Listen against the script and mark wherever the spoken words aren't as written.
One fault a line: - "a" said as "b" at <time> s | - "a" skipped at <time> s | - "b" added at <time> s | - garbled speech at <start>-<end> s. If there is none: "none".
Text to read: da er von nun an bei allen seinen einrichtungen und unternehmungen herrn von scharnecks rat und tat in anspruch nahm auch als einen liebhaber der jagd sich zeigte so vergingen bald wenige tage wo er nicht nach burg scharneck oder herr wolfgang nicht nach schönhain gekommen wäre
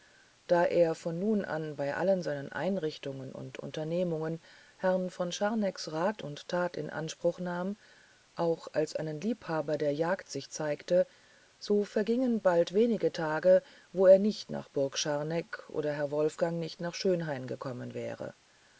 none